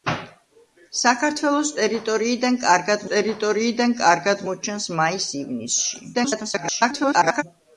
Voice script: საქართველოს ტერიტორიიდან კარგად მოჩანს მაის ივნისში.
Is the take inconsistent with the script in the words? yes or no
yes